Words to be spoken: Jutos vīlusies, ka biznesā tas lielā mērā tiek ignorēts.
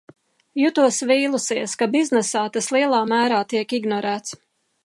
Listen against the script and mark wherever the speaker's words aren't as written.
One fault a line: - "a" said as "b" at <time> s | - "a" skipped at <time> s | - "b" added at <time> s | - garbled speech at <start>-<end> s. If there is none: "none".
none